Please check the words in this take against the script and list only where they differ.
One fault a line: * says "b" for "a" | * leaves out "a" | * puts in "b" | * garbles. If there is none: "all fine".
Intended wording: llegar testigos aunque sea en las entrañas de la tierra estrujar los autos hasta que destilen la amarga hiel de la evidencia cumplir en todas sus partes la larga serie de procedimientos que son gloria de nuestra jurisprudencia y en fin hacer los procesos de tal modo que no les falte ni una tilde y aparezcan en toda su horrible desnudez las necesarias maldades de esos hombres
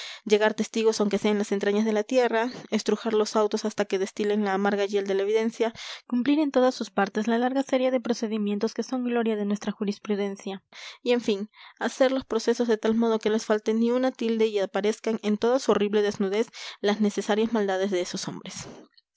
* leaves out "no"